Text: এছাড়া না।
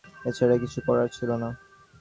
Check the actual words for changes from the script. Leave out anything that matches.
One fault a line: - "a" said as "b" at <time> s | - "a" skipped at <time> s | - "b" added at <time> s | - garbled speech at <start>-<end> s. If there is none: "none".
- "কিছু করার ছিল" added at 0.6 s